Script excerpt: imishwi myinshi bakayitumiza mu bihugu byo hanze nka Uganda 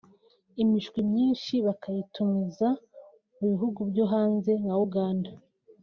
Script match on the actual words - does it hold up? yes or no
yes